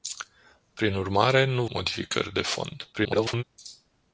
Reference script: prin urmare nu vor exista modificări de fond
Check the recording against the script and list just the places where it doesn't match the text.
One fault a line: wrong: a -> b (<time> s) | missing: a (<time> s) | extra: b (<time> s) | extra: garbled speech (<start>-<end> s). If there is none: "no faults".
missing: vor exista (1.6 s)
extra: garbled speech (2.9-3.4 s)